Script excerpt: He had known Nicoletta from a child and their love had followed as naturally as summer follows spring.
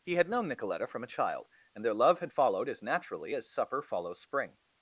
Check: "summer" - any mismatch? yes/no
yes